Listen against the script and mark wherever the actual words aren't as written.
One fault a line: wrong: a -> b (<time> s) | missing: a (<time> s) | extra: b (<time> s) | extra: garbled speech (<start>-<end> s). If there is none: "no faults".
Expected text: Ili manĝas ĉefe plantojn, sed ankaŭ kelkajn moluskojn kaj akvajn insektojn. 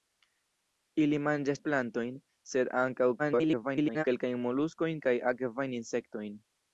missing: ĉefe (1.6 s)
extra: garbled speech (3.2-4.0 s)